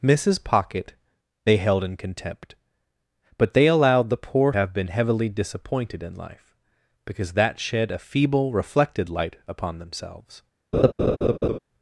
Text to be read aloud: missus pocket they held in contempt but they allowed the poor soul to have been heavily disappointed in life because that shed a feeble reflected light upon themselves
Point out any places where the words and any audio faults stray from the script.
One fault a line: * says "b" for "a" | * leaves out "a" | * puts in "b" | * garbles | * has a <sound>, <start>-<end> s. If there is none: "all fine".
* leaves out "soul to"
* has a laugh, 10.7-11.6 s